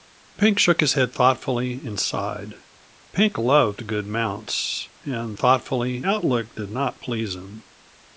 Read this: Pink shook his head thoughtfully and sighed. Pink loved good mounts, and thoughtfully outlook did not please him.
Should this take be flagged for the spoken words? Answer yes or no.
no